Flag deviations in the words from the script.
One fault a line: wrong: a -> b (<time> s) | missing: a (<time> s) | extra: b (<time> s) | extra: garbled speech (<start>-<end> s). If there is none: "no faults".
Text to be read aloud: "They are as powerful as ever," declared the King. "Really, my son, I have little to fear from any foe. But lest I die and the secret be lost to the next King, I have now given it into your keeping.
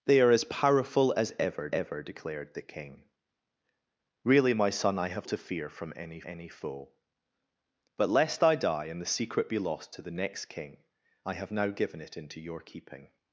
extra: ever (1.7 s)
missing: little (5.3 s)
extra: any (6.3 s)